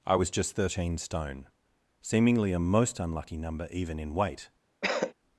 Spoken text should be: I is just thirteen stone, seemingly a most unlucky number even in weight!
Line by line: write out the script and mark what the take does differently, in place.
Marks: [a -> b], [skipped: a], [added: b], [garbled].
I [is -> was] just thirteen stone, seemingly a most unlucky number even in weight!